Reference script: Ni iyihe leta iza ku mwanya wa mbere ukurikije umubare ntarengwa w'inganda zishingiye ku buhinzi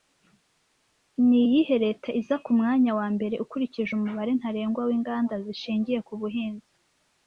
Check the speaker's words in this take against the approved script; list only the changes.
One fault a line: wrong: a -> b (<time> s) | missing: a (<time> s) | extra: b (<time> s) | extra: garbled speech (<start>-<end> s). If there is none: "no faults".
no faults